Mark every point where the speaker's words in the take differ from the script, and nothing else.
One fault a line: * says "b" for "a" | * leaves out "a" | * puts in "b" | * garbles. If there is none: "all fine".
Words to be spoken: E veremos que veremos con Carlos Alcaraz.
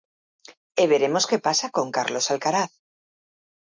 * says "pasa" for "veremos"